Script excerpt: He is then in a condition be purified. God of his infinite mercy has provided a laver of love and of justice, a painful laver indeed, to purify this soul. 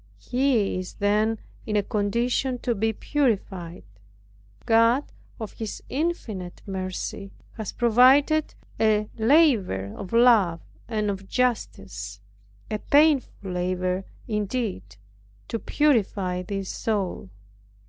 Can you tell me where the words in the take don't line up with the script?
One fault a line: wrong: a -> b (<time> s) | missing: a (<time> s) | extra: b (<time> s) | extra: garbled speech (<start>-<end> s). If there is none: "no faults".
extra: to (2.6 s)